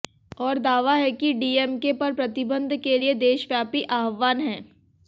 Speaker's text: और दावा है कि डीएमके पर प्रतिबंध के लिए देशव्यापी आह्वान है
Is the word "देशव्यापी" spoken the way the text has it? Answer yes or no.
yes